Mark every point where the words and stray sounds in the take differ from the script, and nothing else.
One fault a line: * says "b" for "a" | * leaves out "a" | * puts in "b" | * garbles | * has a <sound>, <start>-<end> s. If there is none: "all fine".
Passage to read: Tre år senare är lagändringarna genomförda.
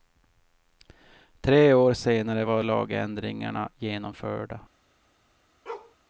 * says "var" for "är"
* has a bark, 5.7-6.0 s